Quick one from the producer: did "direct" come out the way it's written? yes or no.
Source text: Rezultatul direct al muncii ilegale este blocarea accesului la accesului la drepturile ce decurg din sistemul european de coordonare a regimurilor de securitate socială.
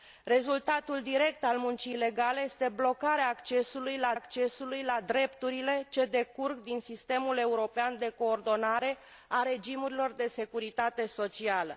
yes